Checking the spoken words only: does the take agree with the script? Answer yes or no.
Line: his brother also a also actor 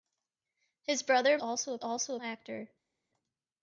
yes